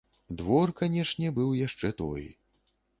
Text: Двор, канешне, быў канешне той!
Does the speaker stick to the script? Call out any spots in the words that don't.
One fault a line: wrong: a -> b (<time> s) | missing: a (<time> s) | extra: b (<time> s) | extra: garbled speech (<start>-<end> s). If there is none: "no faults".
wrong: канешне -> яшчэ (1.7 s)